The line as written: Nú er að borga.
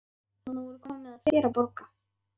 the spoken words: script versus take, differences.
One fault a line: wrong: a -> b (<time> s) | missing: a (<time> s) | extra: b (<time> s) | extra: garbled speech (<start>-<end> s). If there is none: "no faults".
extra: komið að þér (0.9 s)